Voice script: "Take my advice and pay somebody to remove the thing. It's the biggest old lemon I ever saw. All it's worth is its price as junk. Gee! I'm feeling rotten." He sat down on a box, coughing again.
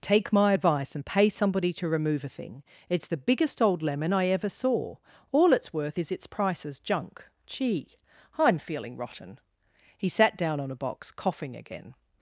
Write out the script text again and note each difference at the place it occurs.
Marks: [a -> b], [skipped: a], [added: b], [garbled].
"Take my advice and pay somebody to remove [the -> a] thing. It's the biggest old lemon I ever saw. All it's worth is its price as junk. Gee! I'm feeling rotten." He sat down on a box, coughing again.